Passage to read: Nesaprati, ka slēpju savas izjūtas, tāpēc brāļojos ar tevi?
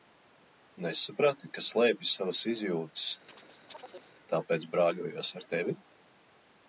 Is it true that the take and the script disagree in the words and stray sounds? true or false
true